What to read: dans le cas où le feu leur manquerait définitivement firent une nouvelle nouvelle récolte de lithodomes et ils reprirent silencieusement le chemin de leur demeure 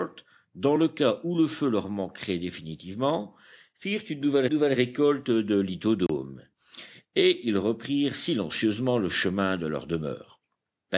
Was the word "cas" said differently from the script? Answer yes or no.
no